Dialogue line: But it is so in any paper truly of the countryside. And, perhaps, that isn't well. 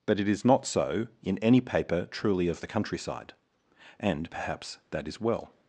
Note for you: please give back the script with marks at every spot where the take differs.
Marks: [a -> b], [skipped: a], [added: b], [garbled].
But it is [added: not] so in any paper truly of the countryside. And, perhaps, that [isn't -> is] well.